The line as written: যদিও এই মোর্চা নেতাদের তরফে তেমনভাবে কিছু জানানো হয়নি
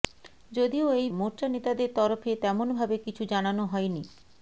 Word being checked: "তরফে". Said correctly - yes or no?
yes